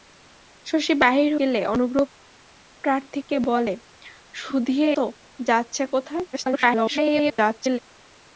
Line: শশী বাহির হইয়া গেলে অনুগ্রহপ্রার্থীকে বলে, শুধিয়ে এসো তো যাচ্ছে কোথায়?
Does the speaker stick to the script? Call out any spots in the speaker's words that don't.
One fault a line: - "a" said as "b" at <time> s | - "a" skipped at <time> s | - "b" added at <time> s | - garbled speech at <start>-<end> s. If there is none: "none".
- "হইয়া" skipped at 1.3 s
- "এসো" skipped at 4.9 s
- garbled speech at 6.3-7.8 s